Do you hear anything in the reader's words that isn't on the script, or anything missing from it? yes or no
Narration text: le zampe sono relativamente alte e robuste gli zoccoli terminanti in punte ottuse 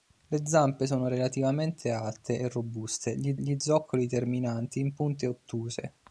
yes